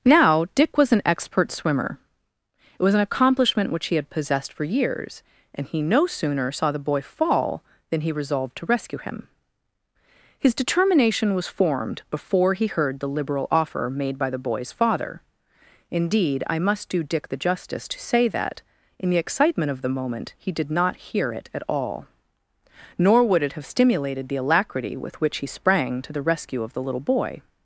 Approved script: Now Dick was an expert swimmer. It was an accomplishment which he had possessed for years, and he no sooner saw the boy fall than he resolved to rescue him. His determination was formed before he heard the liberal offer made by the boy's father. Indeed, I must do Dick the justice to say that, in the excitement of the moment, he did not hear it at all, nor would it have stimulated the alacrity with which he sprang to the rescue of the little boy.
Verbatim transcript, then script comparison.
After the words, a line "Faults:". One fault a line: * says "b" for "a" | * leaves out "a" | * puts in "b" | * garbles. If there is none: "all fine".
Now Dick was an expert swimmer. It was an accomplishment which he had possessed for years, and he no sooner saw the boy fall than he resolved to rescue him. His determination was formed before he heard the liberal offer made by the boy's father. Indeed, I must do Dick the justice to say that, in the excitement of the moment, he did not hear it at all, nor would it have stimulated the alacrity with which he sprang to the rescue of the little boy.
Faults:
all fine